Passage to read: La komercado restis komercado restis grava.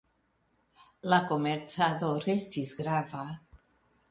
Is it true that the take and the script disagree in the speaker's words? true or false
true